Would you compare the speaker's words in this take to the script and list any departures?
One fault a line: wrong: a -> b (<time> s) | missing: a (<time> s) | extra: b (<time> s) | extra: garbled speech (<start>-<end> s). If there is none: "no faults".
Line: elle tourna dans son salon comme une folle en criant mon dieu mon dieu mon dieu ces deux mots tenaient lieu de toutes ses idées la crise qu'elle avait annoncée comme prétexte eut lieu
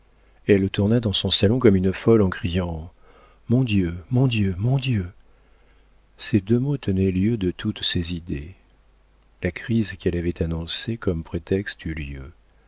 no faults